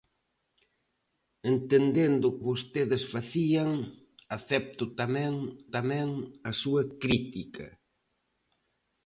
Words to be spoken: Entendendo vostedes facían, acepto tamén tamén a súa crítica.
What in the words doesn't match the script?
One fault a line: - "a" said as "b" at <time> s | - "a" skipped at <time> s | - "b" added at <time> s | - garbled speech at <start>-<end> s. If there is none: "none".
none